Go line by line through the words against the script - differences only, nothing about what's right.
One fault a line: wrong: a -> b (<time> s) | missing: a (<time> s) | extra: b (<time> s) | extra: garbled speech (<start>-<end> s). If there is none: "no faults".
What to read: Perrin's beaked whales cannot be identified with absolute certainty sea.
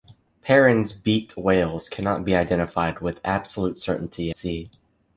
no faults